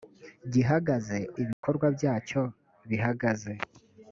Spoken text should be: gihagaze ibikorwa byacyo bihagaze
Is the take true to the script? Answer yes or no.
yes